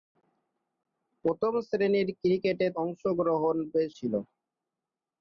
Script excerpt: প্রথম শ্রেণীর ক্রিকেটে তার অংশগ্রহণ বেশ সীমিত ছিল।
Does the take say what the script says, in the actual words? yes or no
no